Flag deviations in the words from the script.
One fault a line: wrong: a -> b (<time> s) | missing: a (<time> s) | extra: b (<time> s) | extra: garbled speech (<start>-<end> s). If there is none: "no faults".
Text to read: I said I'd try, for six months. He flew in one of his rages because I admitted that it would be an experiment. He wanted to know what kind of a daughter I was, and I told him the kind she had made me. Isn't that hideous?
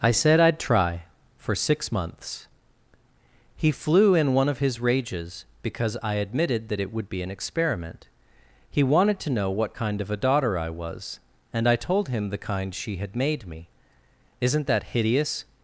no faults